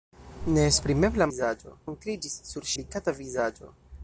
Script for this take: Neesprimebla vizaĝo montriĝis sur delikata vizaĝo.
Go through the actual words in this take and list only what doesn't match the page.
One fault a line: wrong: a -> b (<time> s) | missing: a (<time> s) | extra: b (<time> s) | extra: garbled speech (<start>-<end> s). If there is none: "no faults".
no faults